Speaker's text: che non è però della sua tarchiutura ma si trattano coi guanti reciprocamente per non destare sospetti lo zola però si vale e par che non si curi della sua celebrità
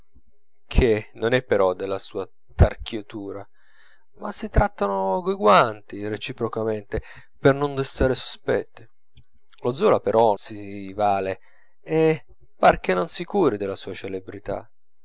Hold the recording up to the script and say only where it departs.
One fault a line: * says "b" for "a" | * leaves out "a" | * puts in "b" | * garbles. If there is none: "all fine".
all fine